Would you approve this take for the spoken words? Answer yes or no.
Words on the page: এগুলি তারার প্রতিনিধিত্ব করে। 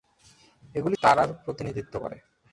yes